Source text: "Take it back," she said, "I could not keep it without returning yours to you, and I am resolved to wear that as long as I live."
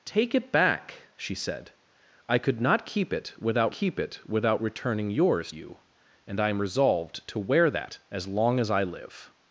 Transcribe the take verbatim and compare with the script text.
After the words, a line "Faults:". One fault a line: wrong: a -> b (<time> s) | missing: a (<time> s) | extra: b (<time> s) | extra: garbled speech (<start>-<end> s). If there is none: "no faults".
"Take it back," she said, "I could not keep it without keep it without returning yours you, and I am resolved to wear that as long as I live."
Faults:
extra: keep it without (3.7 s)
missing: to (5.5 s)